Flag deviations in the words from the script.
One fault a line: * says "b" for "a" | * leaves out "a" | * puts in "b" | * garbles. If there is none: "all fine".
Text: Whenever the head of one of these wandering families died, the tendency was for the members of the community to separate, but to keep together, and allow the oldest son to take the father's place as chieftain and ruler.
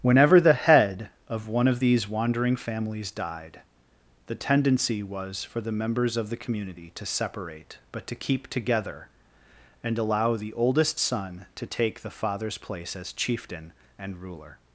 all fine